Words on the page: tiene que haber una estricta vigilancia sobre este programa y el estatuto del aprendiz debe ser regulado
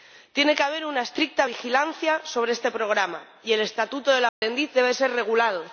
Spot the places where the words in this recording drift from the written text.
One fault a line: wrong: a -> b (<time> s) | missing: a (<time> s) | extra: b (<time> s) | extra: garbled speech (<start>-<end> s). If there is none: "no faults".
no faults